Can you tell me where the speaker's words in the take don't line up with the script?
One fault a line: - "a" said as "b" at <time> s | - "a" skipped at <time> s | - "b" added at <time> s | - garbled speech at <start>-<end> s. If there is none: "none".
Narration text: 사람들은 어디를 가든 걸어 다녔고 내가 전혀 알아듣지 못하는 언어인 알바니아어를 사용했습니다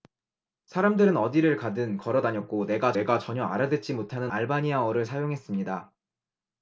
- "내가" added at 2.9 s
- "언어인" skipped at 4.3 s